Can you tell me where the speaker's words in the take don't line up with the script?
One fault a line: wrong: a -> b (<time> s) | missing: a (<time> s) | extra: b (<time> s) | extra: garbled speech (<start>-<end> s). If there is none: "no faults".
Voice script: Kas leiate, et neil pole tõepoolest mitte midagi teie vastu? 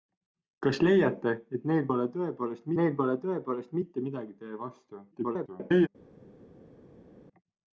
extra: neil pole tõepoolest (2.8 s)
extra: garbled speech (5.1-5.9 s)